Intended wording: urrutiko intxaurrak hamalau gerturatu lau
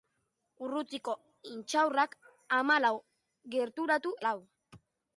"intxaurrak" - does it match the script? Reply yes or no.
yes